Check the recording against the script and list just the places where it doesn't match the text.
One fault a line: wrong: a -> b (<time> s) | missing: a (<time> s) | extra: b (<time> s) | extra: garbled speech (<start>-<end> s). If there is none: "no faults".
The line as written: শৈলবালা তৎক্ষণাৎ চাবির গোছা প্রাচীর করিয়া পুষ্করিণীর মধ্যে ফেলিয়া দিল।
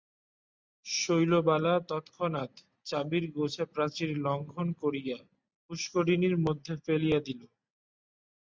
extra: লঙ্ঘন (4.2 s)